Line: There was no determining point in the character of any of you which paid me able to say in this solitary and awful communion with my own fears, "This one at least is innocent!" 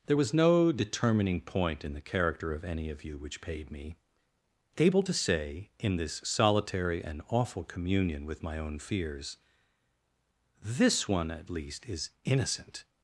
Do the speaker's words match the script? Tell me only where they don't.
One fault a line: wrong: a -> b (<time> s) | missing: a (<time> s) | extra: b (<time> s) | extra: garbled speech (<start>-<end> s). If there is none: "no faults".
no faults